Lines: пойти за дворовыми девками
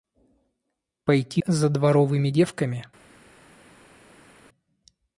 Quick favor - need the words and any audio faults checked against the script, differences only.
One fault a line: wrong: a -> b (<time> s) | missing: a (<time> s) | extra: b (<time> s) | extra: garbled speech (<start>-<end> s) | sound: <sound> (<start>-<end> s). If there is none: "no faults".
no faults